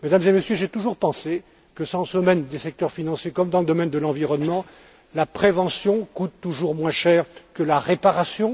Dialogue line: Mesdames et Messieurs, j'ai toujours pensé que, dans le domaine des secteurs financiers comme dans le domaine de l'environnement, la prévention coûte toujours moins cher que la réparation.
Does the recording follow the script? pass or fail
pass